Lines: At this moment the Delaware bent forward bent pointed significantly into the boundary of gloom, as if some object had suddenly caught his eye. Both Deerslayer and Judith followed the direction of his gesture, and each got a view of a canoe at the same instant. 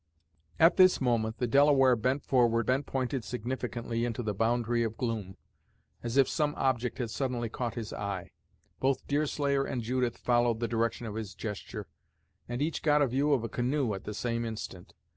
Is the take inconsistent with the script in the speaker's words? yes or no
no